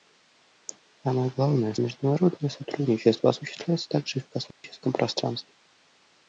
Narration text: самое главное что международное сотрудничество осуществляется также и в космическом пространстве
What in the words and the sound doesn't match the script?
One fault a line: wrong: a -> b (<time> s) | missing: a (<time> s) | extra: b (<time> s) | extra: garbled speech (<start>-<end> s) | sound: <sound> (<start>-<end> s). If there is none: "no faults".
missing: что (1.8 s)
sound: dropout (4.5-4.6 s)